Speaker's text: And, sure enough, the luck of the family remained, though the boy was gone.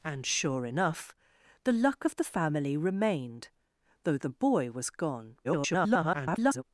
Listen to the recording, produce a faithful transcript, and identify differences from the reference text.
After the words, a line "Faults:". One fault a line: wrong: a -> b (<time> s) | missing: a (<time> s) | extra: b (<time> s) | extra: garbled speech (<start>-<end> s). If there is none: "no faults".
And, sure enough, the luck of the family remained, though the boy was gone. [garbled]
Faults:
extra: garbled speech (5.4-6.6 s)